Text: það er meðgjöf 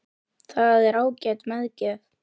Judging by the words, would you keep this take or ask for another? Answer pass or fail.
fail